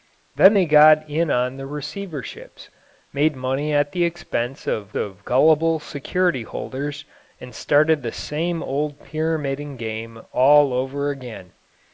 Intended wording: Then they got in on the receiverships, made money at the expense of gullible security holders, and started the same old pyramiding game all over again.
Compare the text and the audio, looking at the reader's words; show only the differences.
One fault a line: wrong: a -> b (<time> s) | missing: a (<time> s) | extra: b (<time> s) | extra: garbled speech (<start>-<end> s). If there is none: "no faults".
extra: of (5.0 s)